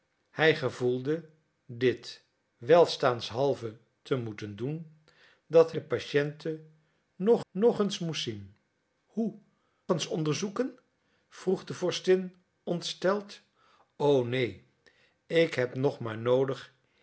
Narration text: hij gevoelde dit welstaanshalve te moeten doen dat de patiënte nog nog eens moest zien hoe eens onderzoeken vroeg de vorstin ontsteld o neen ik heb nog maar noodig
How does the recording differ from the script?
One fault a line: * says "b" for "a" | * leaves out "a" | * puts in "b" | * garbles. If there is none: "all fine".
all fine